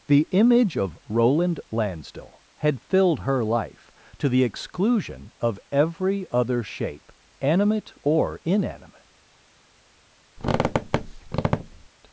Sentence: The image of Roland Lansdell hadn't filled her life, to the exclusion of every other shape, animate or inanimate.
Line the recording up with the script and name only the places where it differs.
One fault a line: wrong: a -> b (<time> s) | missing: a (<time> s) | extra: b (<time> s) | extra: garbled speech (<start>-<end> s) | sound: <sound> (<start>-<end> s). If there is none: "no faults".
wrong: hadn't -> had (2.5 s)
sound: squeak (10.4-11.9 s)